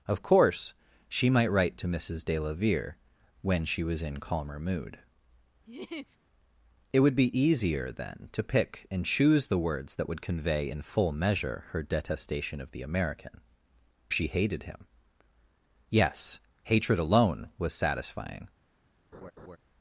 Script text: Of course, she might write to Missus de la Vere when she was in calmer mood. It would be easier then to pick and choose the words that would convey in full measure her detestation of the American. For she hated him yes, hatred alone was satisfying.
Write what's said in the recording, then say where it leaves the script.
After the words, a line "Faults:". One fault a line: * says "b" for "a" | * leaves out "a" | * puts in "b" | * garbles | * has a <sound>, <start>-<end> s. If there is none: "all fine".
Of course, she might write to Missus de la Vere when she was in calmer mood. It would be easier then to pick and choose the words that would convey in full measure her detestation of the American. She hated him yes, hatred alone was satisfying.
Faults:
* has a laugh, 5.7-6.2 s
* leaves out "For"
* has a laugh, 19.1-19.6 s